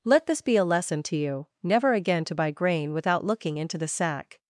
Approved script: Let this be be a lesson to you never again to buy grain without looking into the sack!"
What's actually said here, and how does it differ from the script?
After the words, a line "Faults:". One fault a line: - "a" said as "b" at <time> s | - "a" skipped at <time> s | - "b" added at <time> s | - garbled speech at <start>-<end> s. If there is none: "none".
Let this be a lesson to you never again to buy grain without looking into the sack!"
Faults:
- "be" skipped at 0.6 s